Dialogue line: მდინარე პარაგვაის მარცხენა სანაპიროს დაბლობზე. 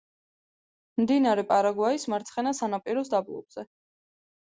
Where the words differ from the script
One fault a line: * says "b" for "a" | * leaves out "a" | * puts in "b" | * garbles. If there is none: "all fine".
all fine